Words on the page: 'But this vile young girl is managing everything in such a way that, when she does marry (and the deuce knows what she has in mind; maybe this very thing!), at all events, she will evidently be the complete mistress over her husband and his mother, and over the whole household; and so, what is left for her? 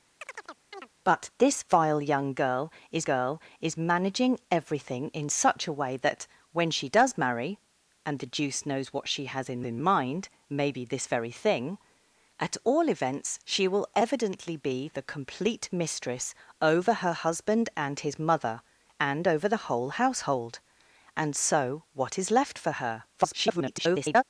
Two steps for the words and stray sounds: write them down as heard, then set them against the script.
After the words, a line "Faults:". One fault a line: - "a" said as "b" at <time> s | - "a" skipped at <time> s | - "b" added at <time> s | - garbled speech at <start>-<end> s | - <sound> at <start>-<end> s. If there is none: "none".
'But this vile young girl is girl is managing everything in such a way that, when she does marry (and the deuce knows what she has in in mind; maybe this very thing!), at all events, she will evidently be the complete mistress over her husband and his mother, and over the whole household; and so, what is left for her? [garbled]
Faults:
- chirp at 0.2-0.9 s
- "girl is" added at 3.0 s
- "in" added at 9.6 s
- garbled speech at 23.1-24.2 s